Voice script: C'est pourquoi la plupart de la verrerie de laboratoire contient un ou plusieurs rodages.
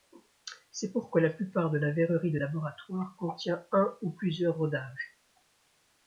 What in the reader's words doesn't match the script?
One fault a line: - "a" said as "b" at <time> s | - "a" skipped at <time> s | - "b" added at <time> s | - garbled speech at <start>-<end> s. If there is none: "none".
none